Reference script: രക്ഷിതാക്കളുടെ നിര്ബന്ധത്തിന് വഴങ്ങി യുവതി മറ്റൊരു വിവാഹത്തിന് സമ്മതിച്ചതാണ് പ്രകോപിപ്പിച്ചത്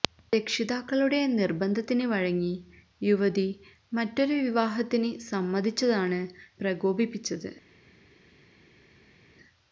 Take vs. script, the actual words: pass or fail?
pass